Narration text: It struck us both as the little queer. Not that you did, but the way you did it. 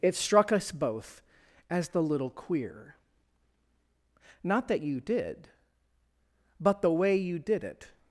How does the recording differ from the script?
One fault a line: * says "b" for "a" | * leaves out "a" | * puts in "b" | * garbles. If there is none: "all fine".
all fine